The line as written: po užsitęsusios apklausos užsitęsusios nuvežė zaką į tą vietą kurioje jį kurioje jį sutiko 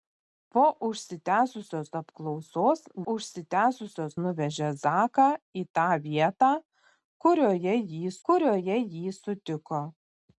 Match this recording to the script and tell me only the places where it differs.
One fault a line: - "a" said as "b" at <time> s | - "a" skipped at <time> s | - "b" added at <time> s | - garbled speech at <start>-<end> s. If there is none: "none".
none